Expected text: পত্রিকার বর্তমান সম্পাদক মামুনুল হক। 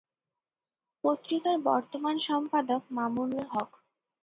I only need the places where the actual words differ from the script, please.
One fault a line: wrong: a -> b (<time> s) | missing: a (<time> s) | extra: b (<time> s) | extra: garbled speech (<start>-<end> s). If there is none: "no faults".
no faults